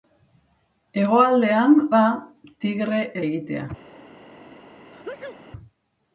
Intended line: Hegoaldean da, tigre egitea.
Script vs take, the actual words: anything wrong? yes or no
no